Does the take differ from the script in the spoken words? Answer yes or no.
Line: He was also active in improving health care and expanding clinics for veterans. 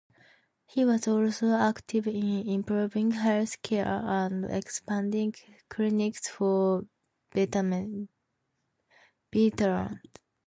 no